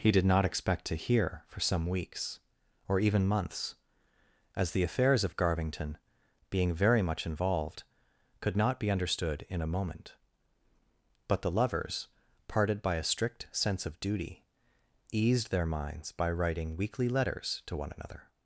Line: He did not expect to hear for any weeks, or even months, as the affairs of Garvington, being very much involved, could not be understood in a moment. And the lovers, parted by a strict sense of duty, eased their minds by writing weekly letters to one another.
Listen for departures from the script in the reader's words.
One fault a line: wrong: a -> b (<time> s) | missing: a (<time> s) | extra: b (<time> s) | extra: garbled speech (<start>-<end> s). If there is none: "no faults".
wrong: any -> some (1.6 s)
wrong: And -> But (11.3 s)